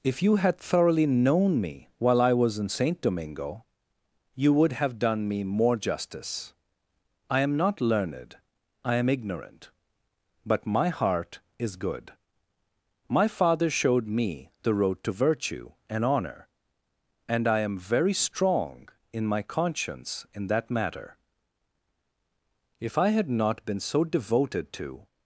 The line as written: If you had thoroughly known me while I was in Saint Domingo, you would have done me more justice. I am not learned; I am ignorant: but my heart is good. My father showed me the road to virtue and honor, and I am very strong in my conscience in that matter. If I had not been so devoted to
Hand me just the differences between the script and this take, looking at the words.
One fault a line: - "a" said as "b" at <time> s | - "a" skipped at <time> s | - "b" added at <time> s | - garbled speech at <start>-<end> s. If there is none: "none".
none